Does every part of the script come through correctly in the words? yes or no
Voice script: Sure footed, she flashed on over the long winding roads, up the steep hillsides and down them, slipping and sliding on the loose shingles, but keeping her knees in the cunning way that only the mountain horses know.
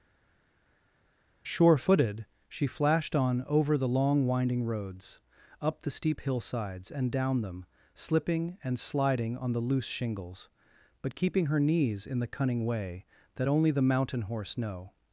no